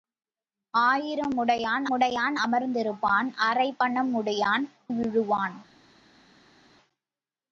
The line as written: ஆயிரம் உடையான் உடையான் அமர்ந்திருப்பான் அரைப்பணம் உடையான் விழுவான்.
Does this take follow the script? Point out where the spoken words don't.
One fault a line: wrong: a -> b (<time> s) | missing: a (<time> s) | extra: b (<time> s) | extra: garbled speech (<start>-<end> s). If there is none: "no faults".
no faults